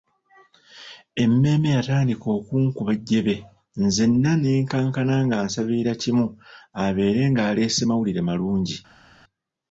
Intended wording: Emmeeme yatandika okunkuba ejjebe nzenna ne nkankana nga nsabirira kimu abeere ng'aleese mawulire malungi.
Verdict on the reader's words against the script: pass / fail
pass